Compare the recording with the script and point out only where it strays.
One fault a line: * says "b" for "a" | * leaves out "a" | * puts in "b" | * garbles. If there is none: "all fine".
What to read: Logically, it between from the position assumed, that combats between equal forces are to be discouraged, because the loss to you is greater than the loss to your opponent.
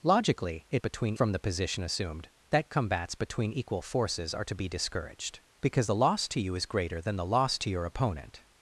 all fine